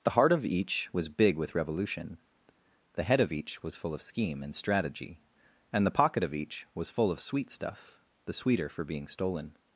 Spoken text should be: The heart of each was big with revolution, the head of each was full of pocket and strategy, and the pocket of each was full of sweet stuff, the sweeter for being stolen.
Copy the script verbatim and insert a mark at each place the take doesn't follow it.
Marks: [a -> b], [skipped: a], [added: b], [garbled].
The heart of each was big with revolution, the head of each was full of [pocket -> scheme] and strategy, and the pocket of each was full of sweet stuff, the sweeter for being stolen.